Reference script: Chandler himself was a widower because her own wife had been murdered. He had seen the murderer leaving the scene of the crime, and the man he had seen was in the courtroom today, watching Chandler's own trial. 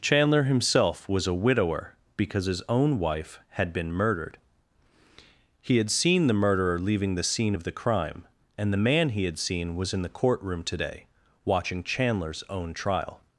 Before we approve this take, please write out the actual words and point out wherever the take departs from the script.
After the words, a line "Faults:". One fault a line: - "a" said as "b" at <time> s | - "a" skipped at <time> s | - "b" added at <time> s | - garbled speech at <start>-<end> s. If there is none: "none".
Chandler himself was a widower because his own wife had been murdered. He had seen the murderer leaving the scene of the crime, and the man he had seen was in the courtroom today, watching Chandler's own trial.
Faults:
- "her" said as "his" at 2.5 s